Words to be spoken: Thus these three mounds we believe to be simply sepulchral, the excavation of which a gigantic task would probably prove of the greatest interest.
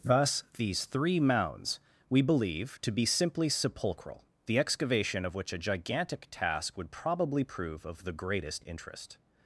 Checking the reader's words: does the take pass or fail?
pass